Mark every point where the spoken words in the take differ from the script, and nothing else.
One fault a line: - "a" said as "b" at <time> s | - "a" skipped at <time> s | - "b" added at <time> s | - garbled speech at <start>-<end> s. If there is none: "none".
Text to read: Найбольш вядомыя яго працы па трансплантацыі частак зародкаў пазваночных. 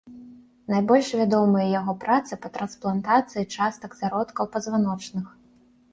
none